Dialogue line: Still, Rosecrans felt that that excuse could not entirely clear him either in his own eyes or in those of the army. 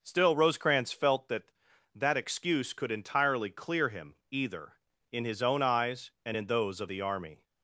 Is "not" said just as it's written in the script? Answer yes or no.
no